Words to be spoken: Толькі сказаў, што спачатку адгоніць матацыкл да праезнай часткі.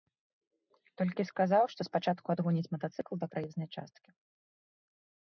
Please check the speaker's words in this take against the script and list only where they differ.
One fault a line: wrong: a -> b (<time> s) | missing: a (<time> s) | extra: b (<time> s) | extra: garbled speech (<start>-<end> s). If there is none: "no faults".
no faults